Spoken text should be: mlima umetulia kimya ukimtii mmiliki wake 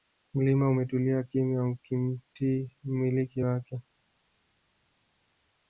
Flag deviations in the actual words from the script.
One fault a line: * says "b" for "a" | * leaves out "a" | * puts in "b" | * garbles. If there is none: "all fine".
all fine